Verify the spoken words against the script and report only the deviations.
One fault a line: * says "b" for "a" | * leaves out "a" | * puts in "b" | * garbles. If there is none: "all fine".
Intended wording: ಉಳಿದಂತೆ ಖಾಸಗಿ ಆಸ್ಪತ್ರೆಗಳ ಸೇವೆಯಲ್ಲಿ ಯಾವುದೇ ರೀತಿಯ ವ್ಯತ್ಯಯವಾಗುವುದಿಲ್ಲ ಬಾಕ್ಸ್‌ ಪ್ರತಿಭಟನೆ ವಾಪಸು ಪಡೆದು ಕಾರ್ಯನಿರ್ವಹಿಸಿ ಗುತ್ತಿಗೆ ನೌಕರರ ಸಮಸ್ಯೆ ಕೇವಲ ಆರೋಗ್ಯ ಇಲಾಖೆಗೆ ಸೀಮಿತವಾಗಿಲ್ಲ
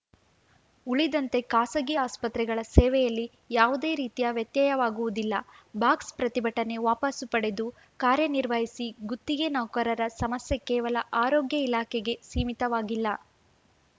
all fine